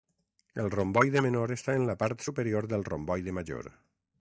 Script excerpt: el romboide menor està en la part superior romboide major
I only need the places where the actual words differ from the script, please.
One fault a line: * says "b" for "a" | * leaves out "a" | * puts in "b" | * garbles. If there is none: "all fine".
* puts in "del"